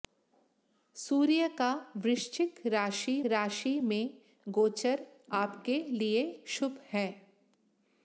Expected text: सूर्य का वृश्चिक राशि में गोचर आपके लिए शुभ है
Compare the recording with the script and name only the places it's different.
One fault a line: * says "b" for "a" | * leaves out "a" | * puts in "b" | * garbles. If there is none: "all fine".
* puts in "राशि"